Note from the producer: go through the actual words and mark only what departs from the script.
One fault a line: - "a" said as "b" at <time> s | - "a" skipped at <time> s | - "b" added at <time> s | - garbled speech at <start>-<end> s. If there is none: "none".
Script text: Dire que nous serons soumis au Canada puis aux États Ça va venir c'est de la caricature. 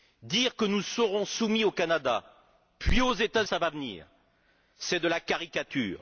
none